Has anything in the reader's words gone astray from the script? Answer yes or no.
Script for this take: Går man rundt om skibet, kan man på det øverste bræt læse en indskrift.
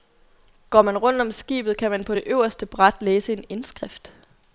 no